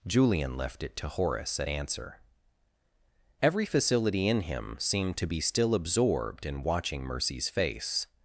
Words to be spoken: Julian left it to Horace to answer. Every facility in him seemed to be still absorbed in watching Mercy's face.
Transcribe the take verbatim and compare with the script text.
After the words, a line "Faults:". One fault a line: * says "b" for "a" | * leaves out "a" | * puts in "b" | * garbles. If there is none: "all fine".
Julian left it to Horace at answer. Every facility in him seemed to be still absorbed in watching Mercy's face.
Faults:
* says "at" for "to"